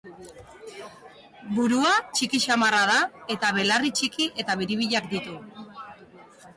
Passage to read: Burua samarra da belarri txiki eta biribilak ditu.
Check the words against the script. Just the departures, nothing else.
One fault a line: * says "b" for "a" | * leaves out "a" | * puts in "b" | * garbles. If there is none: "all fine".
* puts in "txiki"
* puts in "eta"